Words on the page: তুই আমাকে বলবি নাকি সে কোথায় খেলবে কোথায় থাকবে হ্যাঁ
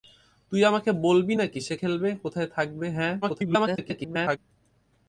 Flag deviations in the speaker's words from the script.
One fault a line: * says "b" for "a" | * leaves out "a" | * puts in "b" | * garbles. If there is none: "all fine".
* leaves out "কোথায়"
* garbles